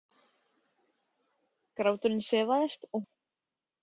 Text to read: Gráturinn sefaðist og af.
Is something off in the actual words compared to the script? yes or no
no